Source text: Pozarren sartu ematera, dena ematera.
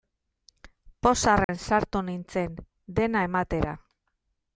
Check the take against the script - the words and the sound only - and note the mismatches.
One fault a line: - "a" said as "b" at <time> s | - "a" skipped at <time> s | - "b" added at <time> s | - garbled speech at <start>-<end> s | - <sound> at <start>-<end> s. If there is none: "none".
- dropout at 1.4-1.5 s
- "ematera" said as "nintzen" at 2.1 s